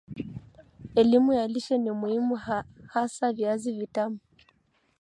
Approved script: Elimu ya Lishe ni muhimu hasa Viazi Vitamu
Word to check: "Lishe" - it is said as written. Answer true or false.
true